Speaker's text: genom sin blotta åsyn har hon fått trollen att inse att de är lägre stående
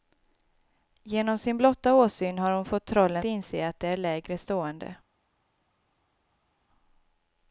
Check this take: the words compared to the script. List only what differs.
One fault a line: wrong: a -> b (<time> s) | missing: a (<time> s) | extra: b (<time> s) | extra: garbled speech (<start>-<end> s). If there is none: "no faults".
missing: att (3.2 s)